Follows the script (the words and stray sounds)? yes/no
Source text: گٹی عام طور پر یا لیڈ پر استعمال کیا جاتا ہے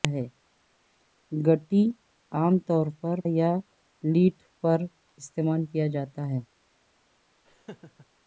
no